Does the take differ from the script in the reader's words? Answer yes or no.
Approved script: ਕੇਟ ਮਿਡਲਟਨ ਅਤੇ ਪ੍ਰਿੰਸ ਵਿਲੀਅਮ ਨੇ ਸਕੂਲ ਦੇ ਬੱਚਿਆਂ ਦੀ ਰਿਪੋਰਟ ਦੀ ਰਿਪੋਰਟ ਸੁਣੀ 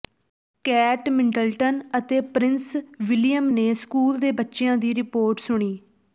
yes